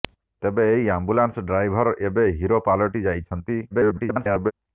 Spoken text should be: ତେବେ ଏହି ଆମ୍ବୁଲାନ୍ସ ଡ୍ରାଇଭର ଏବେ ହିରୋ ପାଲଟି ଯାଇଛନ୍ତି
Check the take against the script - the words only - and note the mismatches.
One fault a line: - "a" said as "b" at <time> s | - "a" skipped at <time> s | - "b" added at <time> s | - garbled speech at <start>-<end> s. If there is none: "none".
- garbled speech at 3.7-4.5 s